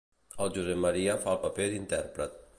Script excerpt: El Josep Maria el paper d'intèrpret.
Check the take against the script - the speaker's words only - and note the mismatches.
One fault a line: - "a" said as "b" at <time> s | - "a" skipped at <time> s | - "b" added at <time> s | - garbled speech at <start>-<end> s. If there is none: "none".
- "fa" added at 1.2 s